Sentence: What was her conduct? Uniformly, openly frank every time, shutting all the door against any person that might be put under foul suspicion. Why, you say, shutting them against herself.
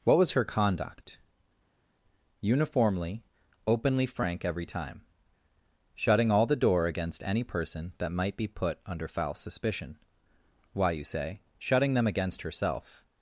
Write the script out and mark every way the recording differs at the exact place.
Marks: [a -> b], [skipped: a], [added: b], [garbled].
What was her conduct? Uniformly, openly frank every time, shutting all the door against any person that might be put under foul suspicion. Why, you say, shutting them against herself.